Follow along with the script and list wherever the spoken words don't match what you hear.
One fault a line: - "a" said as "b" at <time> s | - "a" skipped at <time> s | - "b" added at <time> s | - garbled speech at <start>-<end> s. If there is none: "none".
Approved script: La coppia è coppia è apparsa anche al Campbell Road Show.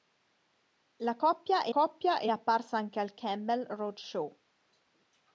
none